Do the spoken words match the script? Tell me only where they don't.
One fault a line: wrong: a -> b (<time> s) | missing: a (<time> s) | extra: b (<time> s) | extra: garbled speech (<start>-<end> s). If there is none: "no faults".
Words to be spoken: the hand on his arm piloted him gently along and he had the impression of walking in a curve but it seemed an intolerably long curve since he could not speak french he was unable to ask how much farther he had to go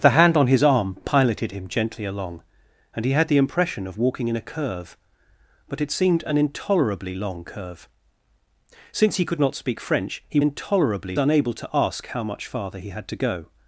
wrong: was -> intolerably (10.4 s)